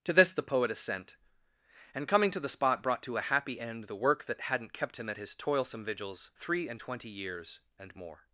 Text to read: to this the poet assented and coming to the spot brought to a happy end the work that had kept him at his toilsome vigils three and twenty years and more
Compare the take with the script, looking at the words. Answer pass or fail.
fail